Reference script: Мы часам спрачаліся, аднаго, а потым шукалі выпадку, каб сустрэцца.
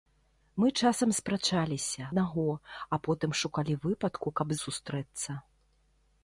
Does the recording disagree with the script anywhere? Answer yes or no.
no